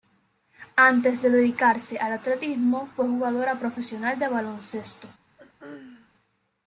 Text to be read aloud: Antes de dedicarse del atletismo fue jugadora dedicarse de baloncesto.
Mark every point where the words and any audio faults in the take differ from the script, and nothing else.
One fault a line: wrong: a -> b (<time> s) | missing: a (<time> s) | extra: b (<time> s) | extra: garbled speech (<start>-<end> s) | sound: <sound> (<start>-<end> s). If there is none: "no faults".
wrong: del -> al (2.0 s)
wrong: dedicarse -> profesional (3.6 s)
sound: throat clearing (5.4-6.1 s)